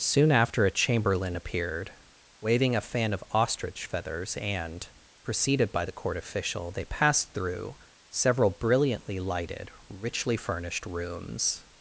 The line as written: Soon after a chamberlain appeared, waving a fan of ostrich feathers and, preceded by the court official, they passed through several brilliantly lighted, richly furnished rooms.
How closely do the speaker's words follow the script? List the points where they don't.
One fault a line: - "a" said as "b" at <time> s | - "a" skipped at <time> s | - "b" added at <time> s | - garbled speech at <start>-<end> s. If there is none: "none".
none